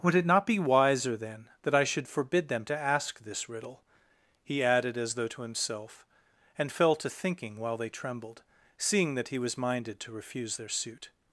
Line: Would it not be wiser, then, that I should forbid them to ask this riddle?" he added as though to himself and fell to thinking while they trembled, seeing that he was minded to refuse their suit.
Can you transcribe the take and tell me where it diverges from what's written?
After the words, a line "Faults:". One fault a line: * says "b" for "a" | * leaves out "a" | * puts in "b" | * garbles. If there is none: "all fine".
Would it not be wiser, then, that I should forbid them to ask this riddle?" he added as though to himself and fell to thinking while they trembled, seeing that he was minded to refuse their suit.
Faults:
all fine